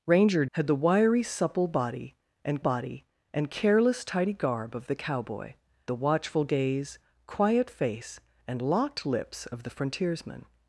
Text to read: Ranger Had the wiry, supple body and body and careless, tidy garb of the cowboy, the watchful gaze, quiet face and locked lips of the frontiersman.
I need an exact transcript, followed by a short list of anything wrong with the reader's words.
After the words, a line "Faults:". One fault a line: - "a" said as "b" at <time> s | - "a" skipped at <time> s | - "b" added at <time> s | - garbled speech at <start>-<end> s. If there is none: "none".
Ranger Had the wiry, supple body and body and careless, tidy garb of the cowboy, the watchful gaze, quiet face and locked lips of the frontiersman.
Faults:
none